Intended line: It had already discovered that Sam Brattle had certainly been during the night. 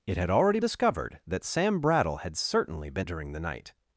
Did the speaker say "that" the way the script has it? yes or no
yes